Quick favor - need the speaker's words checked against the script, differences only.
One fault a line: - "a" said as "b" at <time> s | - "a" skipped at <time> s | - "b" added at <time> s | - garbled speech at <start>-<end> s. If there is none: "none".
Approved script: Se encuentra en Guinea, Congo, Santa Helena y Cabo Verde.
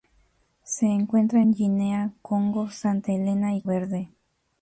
- "Cabo" skipped at 3.6 s